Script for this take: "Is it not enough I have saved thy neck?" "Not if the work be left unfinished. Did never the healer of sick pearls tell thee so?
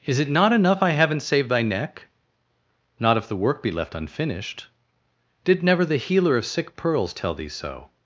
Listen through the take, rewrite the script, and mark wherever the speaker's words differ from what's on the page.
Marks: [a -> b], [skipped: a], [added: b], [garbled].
"Is it not enough I [have -> haven't] saved thy neck?" "Not if the work be left unfinished. Did never the healer of sick pearls tell thee so?